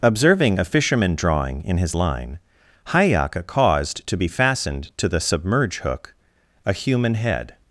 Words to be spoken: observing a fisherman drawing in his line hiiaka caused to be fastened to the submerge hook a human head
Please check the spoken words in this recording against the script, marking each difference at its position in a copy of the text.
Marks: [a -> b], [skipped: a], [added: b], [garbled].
observing a fisherman drawing in his line hiiaka caused to be fastened to the submerge hook a human head